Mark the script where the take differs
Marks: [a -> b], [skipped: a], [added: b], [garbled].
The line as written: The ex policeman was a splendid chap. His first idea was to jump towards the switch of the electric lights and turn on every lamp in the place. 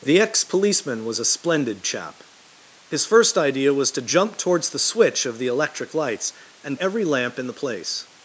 The ex policeman was a splendid chap. His first idea was to jump towards the switch of the electric lights and [skipped: turn on] every lamp in the place.